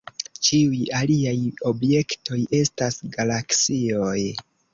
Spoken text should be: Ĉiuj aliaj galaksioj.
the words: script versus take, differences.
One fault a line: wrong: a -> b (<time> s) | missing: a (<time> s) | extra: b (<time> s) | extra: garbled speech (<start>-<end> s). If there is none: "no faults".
extra: objektoj estas (1.7 s)